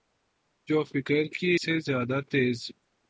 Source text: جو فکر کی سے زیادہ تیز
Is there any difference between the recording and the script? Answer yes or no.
no